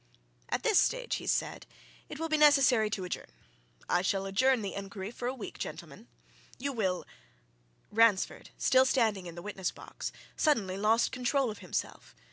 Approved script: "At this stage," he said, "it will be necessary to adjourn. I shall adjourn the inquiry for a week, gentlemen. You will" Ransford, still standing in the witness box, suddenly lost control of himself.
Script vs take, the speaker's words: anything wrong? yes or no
no